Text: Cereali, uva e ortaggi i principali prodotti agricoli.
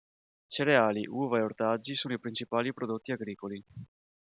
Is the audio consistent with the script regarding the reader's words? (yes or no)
no